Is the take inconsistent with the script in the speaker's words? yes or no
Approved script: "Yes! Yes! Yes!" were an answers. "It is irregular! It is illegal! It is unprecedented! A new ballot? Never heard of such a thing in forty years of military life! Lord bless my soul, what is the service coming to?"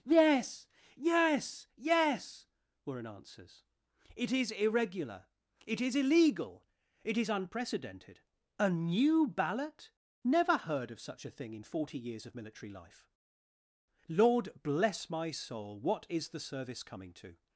no